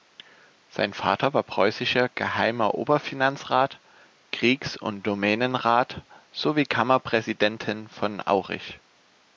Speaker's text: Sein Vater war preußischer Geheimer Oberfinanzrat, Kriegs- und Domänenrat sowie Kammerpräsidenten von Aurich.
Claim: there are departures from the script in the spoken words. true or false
false